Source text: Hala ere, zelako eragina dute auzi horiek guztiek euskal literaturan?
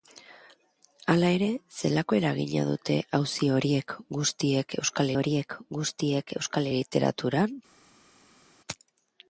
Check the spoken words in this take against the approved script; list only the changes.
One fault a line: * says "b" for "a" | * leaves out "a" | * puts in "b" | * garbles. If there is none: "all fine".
* puts in "horiek guztiek euskal"